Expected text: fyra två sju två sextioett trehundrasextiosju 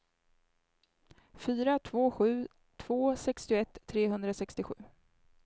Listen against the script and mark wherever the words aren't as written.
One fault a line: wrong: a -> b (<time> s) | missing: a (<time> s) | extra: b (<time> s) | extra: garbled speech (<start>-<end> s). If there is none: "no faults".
no faults